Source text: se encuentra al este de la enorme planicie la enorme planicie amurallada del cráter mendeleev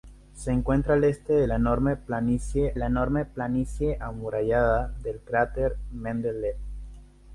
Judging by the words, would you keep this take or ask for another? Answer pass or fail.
pass